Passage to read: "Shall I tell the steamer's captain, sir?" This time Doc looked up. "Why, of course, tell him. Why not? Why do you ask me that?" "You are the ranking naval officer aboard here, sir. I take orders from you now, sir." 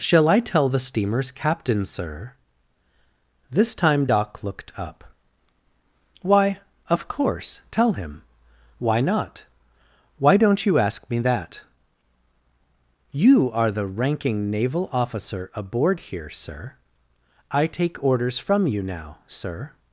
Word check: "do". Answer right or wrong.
wrong